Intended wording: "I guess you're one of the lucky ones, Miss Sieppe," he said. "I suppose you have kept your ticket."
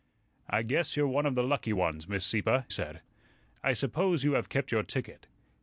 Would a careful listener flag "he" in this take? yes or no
yes